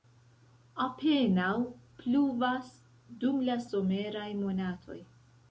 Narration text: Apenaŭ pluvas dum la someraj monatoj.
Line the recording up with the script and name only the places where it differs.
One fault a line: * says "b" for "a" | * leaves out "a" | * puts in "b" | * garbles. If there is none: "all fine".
all fine